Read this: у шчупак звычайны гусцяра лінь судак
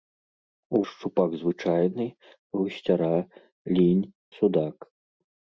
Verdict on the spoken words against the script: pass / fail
pass